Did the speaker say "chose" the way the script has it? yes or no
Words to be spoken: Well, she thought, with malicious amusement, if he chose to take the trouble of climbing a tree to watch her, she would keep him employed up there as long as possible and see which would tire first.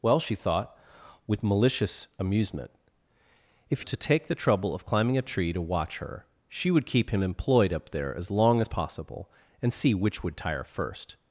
no